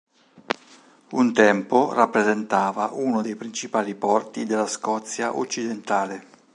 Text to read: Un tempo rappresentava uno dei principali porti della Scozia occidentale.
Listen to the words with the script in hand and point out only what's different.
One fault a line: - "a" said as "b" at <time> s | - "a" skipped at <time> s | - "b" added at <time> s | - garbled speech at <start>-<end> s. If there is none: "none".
none